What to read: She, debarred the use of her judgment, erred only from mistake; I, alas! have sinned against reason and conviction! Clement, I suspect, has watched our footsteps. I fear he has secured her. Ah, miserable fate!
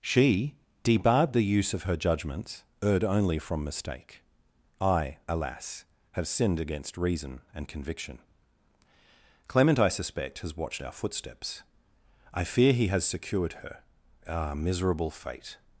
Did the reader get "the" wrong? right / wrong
right